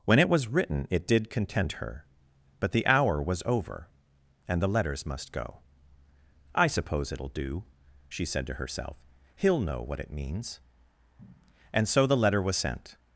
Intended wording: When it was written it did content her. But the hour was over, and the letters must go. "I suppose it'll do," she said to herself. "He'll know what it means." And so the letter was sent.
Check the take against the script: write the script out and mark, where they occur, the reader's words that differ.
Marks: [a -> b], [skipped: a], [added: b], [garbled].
When it was written it did content her. But the hour was over, and the letters must go. "I suppose it'll do," she said to herself. "He'll know what it means." And so the letter was sent.